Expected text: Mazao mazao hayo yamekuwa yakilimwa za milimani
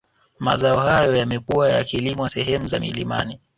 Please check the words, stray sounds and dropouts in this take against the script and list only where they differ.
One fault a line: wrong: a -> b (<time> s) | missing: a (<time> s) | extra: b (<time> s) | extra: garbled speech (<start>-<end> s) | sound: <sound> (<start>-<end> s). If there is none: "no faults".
missing: mazao (0.8 s)
extra: sehemu (2.3 s)